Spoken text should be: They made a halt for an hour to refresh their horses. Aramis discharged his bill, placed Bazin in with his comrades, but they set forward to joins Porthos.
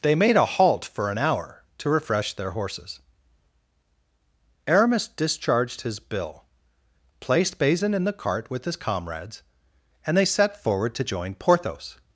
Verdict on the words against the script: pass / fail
fail